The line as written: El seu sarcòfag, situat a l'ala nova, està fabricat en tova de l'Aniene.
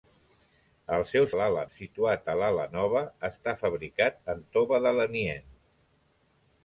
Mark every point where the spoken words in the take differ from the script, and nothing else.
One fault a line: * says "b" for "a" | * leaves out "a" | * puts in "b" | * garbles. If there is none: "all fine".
* says "l'ala" for "sarcòfag"